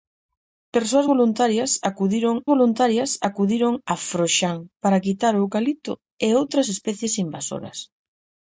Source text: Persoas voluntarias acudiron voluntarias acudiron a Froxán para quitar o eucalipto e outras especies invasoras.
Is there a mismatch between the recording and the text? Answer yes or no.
no